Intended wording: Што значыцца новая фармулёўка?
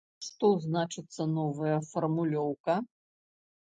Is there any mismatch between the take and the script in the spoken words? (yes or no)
no